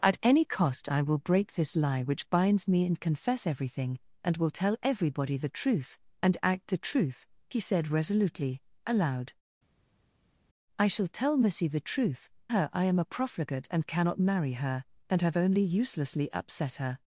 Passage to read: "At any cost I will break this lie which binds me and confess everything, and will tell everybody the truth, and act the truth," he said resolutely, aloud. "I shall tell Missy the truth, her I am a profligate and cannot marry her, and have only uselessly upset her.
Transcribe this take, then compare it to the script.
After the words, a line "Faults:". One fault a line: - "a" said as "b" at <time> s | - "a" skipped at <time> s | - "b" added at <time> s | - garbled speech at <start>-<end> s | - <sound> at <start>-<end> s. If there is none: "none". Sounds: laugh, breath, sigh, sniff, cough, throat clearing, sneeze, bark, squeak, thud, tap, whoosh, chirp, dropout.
"At any cost I will break this lie which binds me and confess everything, and will tell everybody the truth, and act the truth," he said resolutely, aloud. "I shall tell Missy the truth, her I am a profligate and cannot marry her, and have only uselessly upset her.
Faults:
none